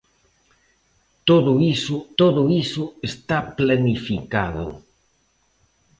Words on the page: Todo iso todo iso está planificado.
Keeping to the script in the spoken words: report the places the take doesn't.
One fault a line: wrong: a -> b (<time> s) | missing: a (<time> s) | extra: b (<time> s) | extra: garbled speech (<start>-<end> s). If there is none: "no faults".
no faults